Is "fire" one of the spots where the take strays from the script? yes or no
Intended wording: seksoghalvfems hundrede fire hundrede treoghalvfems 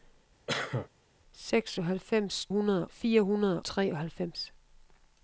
no